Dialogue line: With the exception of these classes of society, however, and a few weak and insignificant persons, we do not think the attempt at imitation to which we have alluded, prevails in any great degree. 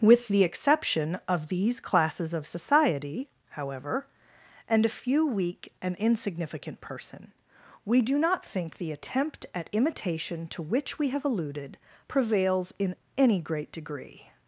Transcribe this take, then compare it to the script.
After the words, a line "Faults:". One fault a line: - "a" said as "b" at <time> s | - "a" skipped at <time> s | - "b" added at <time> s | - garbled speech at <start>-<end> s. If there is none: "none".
With the exception of these classes of society, however, and a few weak and insignificant person, we do not think the attempt at imitation to which we have alluded, prevails in any great degree.
Faults:
- "persons" said as "person" at 6.8 s